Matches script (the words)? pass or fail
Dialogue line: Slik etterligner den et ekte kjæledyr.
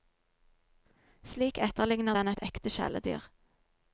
pass